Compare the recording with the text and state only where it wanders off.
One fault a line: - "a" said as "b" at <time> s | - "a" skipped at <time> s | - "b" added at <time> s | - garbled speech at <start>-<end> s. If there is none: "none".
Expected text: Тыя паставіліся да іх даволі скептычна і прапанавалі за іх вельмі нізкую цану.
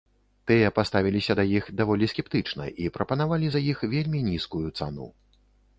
none